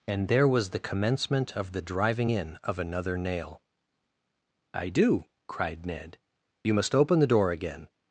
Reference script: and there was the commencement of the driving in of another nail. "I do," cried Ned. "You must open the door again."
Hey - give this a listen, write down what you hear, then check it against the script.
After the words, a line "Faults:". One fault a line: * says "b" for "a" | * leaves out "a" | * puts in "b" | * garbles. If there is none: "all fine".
and there was the commencement of the driving in of another nail. "I do," cried Ned. "You must open the door again."
Faults:
all fine